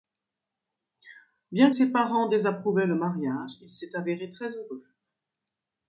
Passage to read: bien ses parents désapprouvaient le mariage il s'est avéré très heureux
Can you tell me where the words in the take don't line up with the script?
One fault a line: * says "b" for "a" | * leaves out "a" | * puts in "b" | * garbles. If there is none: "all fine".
all fine